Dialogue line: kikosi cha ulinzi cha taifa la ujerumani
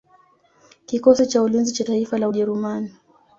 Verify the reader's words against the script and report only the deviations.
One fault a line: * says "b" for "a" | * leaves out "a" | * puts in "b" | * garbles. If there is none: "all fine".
all fine